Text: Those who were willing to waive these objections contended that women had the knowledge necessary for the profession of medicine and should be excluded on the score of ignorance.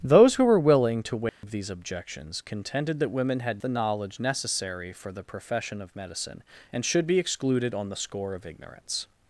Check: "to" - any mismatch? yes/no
no